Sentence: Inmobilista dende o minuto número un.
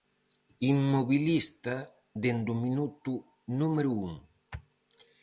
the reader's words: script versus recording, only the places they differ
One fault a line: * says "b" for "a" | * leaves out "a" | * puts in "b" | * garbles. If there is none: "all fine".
all fine